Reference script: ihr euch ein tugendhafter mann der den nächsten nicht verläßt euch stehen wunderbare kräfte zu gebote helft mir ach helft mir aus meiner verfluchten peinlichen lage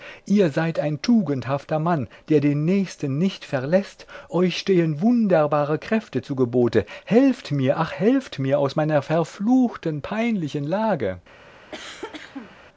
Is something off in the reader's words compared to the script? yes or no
yes